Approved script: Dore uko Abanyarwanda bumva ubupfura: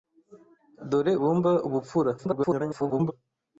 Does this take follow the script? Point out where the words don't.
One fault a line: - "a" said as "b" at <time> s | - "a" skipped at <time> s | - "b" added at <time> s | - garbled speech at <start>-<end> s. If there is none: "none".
- "uko Abanyarwanda" skipped at 1.1 s
- garbled speech at 2.2-3.1 s